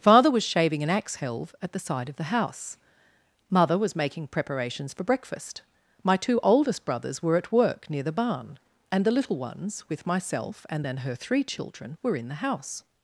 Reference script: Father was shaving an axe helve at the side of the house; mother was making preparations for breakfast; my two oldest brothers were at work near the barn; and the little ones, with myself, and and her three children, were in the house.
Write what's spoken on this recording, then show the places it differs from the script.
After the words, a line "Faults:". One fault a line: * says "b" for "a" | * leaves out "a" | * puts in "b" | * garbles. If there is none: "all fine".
Father was shaving an axe helve at the side of the house; mother was making preparations for breakfast; my two oldest brothers were at work near the barn; and the little ones, with myself, and and her three children, were in the house.
Faults:
all fine